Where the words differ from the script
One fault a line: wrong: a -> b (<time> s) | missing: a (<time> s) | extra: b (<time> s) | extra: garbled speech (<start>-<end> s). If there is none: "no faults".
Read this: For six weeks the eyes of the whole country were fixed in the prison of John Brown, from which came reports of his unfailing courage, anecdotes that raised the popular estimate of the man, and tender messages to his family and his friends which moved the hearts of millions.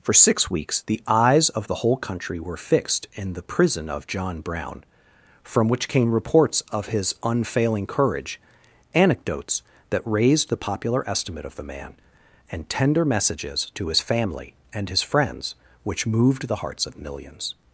no faults